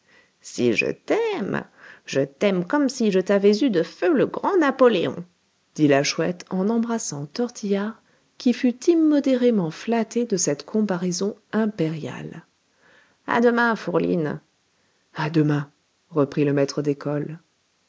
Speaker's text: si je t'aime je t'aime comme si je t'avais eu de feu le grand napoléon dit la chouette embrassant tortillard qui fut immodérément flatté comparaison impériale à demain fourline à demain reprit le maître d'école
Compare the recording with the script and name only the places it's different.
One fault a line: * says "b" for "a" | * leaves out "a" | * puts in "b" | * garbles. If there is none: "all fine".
* puts in "en"
* puts in "de cette"